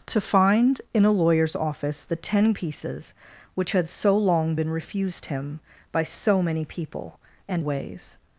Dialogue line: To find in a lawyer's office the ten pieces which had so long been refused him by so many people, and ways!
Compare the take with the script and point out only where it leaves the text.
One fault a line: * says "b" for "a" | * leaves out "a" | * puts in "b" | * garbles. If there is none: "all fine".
all fine